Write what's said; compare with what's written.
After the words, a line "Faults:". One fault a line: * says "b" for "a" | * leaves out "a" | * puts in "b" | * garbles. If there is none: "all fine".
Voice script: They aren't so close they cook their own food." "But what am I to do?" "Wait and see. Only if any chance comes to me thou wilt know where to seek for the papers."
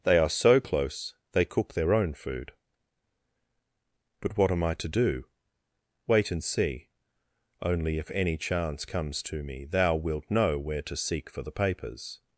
They are so close they cook their own food." "But what am I to do?" "Wait and see. Only if any chance comes to me thou wilt know where to seek for the papers."
Faults:
* says "are" for "aren't"